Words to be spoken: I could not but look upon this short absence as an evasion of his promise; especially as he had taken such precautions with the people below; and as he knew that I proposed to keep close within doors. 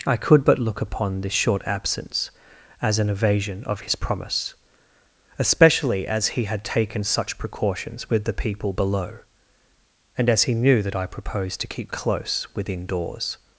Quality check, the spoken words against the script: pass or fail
fail